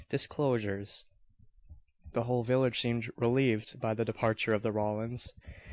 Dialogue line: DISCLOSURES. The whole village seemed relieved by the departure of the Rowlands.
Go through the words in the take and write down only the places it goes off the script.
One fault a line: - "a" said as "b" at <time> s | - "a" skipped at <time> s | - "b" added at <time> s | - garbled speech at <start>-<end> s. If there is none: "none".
none